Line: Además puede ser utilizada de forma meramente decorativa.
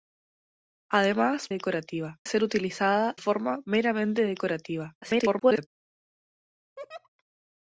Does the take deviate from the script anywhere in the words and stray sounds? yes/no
yes